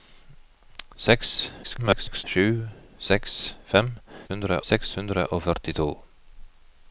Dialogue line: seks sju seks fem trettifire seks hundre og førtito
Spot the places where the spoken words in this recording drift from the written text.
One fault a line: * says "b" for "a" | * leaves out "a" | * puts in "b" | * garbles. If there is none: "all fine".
* garbles
* says "hundre" for "trettifire"